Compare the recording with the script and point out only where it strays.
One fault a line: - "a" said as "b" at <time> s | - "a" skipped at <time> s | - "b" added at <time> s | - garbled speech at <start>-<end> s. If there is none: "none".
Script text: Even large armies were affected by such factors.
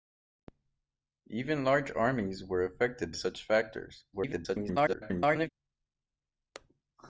- "by" skipped at 3.1 s
- garbled speech at 4.1-5.5 s